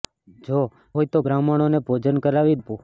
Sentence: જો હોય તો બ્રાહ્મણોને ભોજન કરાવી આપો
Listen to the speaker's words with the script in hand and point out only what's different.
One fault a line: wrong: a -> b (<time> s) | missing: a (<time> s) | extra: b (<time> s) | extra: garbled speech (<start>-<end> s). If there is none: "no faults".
no faults